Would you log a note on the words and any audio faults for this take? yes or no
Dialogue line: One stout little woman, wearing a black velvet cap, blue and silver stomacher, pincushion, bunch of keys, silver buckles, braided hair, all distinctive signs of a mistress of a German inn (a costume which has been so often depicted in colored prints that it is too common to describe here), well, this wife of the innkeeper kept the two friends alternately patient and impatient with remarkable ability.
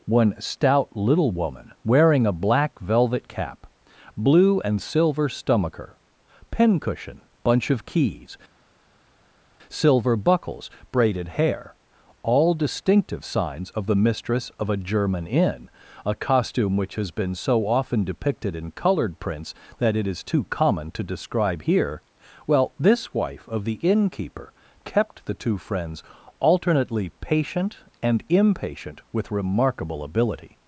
yes